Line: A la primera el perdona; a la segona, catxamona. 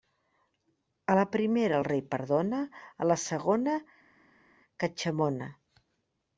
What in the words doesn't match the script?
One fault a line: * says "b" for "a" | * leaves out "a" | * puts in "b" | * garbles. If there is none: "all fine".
* puts in "rei"